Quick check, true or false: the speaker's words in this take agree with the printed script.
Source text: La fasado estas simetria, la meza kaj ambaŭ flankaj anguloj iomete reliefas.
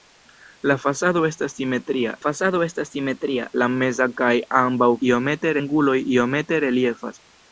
false